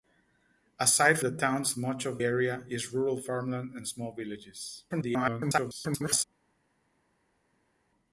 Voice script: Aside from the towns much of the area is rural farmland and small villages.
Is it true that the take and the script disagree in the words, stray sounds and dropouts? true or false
true